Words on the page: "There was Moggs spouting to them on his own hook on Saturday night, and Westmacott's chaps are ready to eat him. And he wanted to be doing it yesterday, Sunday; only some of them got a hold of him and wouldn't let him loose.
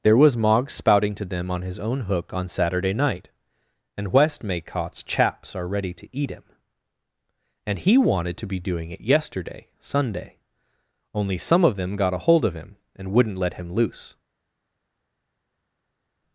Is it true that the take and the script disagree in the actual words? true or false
false